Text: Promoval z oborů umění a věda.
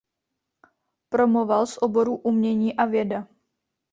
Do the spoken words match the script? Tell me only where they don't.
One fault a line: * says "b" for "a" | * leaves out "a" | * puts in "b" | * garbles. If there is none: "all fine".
all fine